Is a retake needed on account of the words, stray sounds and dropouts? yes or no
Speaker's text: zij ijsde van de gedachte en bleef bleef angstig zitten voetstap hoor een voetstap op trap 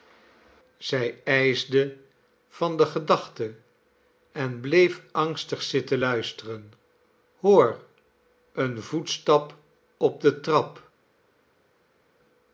yes